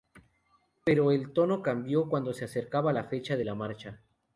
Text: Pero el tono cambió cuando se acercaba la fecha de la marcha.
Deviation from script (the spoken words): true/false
false